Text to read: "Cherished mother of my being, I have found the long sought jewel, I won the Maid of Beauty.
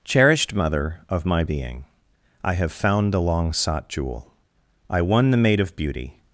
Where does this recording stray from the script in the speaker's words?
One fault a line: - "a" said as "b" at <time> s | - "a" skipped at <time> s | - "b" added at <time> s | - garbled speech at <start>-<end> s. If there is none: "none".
none